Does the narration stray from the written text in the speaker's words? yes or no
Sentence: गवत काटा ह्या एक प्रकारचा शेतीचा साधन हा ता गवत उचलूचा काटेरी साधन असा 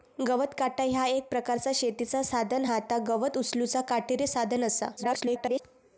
yes